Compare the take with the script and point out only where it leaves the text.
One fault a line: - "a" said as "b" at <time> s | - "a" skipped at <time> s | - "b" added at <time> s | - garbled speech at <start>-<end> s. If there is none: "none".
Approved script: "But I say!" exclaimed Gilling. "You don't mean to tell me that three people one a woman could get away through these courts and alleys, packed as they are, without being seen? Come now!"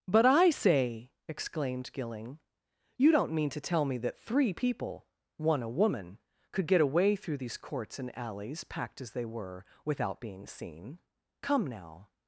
- "are" said as "were" at 9.3 s